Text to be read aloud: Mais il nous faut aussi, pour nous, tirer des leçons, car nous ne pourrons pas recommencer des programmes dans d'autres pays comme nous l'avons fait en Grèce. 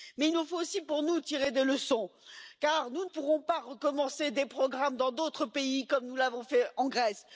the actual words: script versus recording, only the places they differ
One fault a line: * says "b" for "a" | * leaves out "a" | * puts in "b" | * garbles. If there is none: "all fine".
* leaves out "ne"